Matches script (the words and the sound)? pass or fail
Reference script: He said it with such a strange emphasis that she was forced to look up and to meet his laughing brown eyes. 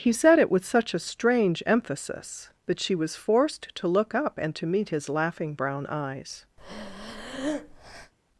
fail